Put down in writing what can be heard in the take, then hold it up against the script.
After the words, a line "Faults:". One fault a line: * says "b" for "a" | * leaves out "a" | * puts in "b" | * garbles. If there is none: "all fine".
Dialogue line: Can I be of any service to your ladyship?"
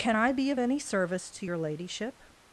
Can I be of any service to your ladyship?"
Faults:
all fine